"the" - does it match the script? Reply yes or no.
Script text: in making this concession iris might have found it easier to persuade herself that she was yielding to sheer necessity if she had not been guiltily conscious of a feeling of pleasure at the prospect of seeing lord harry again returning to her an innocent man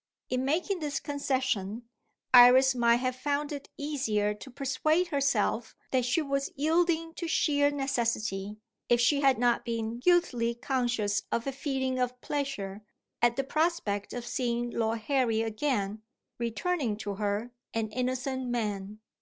yes